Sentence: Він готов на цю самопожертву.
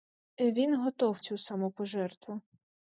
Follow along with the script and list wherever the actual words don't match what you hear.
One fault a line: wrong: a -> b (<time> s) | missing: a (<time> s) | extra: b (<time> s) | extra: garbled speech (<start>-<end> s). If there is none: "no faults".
missing: на (1.2 s)